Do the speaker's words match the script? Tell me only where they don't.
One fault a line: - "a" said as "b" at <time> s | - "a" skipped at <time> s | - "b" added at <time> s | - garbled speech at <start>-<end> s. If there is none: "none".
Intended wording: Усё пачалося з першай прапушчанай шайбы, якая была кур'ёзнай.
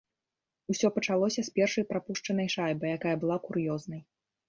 none